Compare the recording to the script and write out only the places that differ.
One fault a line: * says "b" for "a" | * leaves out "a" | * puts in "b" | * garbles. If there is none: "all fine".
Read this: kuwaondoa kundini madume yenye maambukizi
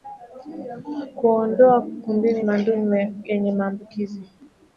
all fine